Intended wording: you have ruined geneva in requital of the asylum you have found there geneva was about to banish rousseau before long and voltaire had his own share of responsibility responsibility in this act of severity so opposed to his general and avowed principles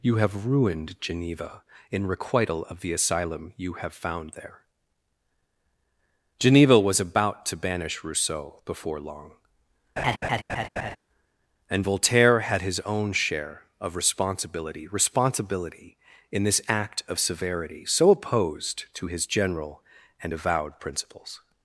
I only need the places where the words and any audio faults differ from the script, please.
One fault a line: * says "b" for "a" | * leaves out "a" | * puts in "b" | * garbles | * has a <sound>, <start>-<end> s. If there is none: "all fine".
* has a laugh, 10.0-11.0 s